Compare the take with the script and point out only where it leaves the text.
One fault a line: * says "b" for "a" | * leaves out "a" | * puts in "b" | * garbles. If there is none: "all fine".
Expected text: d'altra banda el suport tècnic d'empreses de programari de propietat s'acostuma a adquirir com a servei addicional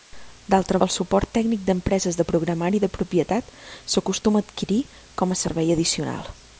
* leaves out "banda"